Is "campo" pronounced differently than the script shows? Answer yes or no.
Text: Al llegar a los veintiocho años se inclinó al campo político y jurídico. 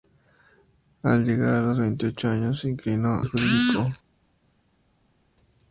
yes